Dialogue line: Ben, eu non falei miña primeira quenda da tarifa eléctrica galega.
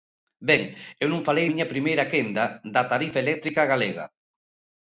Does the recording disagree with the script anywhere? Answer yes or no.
no